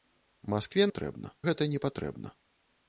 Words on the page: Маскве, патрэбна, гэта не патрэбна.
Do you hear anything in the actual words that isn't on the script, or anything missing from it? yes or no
no